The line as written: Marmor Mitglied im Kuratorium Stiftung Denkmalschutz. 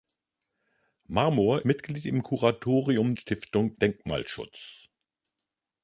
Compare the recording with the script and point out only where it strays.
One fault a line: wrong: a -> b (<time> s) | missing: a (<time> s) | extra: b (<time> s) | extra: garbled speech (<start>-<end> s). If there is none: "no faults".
no faults